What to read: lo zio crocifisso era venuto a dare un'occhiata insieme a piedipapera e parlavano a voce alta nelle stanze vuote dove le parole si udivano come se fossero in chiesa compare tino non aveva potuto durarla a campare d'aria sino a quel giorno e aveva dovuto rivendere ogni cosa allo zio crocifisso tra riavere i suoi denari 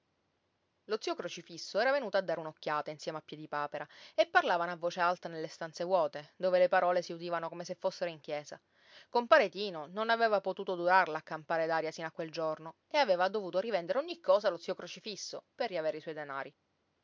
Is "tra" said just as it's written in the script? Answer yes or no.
no